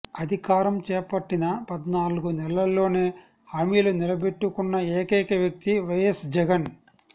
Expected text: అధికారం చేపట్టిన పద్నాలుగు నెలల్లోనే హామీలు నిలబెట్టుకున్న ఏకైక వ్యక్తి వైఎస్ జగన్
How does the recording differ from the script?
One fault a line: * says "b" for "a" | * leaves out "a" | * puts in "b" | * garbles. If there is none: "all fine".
all fine